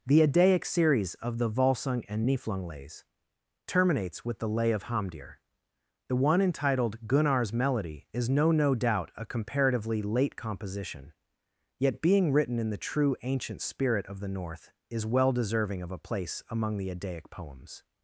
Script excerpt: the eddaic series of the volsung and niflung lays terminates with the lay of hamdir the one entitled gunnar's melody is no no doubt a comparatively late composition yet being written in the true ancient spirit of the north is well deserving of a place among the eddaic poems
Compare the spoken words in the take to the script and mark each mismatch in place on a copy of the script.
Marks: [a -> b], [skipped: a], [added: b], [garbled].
the eddaic series of the volsung and niflung lays terminates with the lay of hamdir the one entitled gunnar's melody is no no doubt a comparatively late composition yet being written in the true ancient spirit of the north is well deserving of a place among the eddaic poems